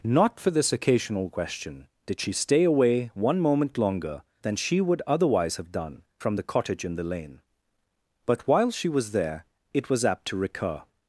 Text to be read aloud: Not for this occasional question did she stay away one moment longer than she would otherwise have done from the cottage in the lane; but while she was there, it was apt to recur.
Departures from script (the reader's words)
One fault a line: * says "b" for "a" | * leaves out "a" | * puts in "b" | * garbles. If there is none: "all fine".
all fine